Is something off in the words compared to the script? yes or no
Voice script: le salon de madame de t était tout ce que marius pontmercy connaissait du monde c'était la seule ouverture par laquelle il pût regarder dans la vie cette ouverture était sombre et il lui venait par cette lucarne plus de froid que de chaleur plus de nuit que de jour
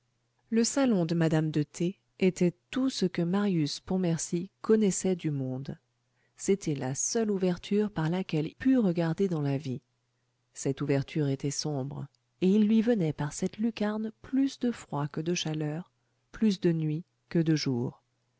yes